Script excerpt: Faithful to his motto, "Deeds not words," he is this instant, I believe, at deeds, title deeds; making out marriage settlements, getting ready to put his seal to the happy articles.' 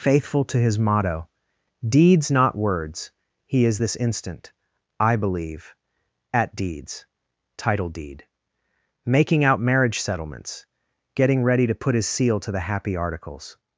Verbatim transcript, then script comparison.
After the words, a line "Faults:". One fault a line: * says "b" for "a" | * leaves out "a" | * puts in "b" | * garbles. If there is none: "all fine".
Faithful to his motto, "Deeds not words," he is this instant, I believe, at deeds, title deed; making out marriage settlements, getting ready to put his seal to the happy articles.'
Faults:
* says "deed" for "deeds"